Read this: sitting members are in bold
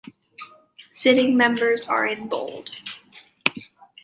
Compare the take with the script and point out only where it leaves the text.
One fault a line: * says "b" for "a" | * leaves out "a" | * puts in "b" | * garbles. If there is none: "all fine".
all fine